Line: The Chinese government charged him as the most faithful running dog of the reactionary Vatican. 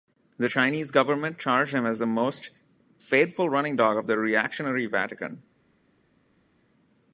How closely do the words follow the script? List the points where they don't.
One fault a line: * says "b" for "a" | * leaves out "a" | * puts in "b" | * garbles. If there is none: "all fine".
all fine